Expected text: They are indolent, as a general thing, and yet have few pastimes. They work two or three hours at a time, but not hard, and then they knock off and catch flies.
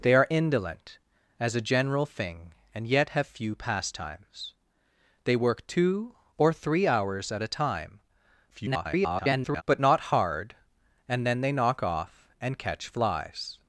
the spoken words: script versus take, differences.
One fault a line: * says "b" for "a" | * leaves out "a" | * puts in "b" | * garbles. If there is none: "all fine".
* garbles